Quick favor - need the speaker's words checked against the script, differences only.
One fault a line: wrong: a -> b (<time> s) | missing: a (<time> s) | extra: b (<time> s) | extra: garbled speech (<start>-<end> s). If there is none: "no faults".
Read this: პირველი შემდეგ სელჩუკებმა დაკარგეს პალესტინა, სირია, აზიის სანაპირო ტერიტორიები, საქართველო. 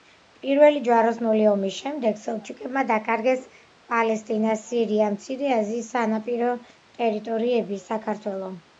extra: ჯვაროსნული ომის (0.8 s)
extra: მცირე (5.2 s)